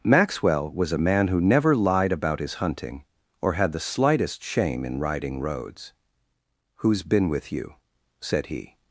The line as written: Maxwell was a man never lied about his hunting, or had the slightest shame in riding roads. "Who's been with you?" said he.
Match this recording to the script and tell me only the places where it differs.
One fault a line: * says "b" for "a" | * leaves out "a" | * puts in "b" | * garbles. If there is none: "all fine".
* puts in "who"